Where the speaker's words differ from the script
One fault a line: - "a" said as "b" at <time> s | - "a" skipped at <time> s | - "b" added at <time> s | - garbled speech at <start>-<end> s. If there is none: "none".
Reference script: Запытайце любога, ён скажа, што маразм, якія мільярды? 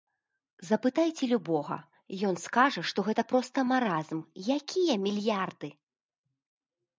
- "гэта проста" added at 3.1 s